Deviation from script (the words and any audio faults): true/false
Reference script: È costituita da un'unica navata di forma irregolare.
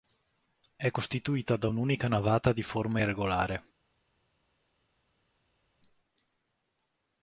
false